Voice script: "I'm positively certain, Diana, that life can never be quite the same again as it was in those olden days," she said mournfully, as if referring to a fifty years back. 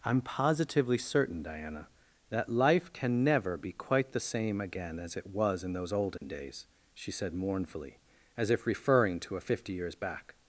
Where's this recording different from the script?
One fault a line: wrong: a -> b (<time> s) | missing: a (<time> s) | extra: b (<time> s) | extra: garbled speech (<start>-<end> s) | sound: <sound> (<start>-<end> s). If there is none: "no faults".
sound: dropout (6.2-6.2 s)